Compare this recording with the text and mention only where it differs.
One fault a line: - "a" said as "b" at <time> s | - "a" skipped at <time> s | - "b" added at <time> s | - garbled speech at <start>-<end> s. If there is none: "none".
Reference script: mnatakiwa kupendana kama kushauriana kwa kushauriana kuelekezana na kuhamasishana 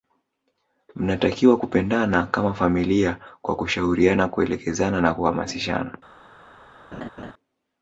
- "kushauriana" said as "familia" at 2.5 s